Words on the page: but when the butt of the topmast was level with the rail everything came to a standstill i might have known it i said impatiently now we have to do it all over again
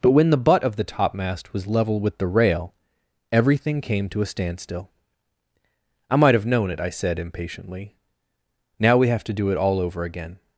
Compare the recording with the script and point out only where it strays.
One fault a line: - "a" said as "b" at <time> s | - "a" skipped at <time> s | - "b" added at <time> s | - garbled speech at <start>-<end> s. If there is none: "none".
none